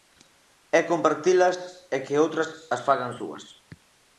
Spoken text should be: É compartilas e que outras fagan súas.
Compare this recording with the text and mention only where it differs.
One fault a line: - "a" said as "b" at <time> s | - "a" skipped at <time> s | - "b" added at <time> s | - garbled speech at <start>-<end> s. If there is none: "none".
- "as" added at 2.7 s